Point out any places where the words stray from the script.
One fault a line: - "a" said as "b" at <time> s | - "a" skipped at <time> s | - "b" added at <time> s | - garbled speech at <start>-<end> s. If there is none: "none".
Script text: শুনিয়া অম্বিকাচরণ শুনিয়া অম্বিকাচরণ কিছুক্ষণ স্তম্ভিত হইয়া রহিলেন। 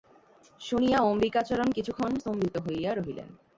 - "শুনিয়া অম্বিকাচরণ" skipped at 1.7 s